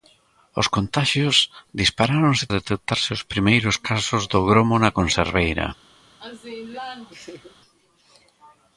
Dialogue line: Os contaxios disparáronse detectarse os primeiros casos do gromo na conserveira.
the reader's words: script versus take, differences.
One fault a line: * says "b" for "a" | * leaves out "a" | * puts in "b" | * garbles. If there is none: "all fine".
all fine